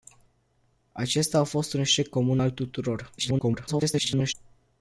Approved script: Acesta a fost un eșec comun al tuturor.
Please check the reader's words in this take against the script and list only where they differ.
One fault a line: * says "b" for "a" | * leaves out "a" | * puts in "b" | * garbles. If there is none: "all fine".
* garbles